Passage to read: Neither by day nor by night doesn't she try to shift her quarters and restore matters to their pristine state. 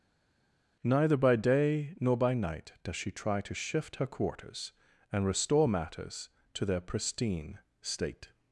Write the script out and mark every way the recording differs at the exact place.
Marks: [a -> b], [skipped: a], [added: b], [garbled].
Neither by day nor by night [doesn't -> does] she try to shift her quarters and restore matters to their pristine state.